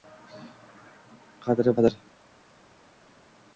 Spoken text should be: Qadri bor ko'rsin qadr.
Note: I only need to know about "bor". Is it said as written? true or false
false